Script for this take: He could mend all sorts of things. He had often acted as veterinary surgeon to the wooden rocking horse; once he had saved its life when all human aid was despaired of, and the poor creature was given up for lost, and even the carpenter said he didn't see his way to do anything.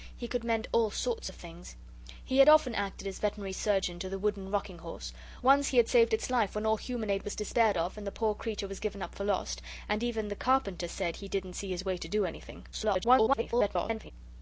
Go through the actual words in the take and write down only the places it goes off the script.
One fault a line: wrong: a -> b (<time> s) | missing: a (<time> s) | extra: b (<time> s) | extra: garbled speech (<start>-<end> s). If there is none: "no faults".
extra: garbled speech (12.7-14.1 s)